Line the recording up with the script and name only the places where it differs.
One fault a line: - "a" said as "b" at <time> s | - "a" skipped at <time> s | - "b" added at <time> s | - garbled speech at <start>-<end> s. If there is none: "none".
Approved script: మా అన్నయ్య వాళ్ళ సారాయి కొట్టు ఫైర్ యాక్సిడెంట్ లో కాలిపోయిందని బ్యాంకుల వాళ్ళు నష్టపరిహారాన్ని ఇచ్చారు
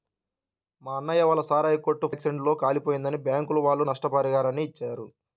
- "ఫైర్" skipped at 2.1 s